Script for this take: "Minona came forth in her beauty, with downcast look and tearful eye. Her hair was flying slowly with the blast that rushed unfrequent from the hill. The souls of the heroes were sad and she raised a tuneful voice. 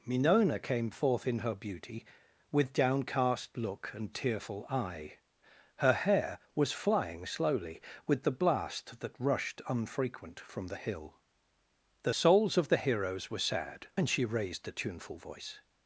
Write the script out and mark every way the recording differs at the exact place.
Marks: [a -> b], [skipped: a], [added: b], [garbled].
"Minona came forth in her beauty, with downcast look and tearful eye. Her hair was flying slowly with the blast that rushed unfrequent from the hill. The souls of the heroes were sad and she raised a tuneful voice.